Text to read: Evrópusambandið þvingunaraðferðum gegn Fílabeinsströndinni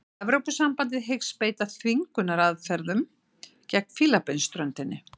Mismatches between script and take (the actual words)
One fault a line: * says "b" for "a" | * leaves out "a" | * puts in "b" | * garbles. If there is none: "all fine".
* puts in "hyggst beita"